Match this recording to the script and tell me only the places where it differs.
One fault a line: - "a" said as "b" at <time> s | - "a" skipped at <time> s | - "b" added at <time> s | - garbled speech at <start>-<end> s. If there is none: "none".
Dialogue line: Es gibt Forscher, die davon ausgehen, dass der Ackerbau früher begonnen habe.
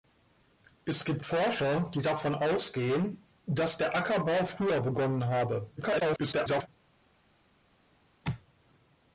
- garbled speech at 5.8-6.7 s